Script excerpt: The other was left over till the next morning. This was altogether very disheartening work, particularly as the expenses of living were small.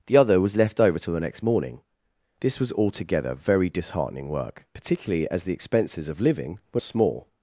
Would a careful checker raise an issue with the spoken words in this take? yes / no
no